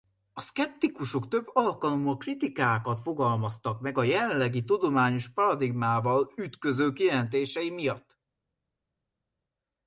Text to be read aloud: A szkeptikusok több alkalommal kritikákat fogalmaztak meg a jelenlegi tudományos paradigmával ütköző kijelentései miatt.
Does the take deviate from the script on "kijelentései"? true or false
false